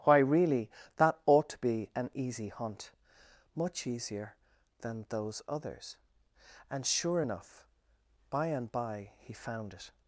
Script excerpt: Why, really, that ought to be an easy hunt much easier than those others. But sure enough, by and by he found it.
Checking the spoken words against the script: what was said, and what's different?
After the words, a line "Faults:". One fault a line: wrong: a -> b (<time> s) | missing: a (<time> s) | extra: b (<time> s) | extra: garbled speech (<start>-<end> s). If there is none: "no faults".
Why, really, that ought to be an easy hunt much easier than those others. And sure enough, by and by he found it.
Faults:
wrong: But -> And (6.7 s)